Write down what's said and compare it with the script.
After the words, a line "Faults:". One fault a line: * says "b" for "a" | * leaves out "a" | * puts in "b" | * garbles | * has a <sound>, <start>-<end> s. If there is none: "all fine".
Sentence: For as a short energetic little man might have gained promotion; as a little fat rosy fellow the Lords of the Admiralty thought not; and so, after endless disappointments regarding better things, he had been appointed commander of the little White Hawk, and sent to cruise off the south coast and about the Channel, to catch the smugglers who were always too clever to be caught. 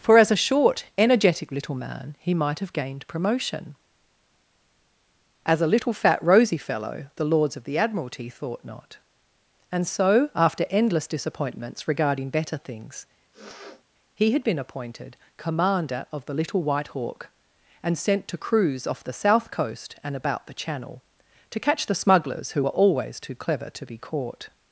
For as a short energetic little man he might have gained promotion; as a little fat rosy fellow the Lords of the Admiralty thought not; and so, after endless disappointments regarding better things, he had been appointed commander of the little White Hawk, and sent to cruise off the south coast and about the Channel, to catch the smugglers who were always too clever to be caught.
Faults:
* puts in "he"
* has a sniff, 13.3-13.8 s